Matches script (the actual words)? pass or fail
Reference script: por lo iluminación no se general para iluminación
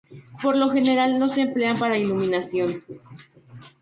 fail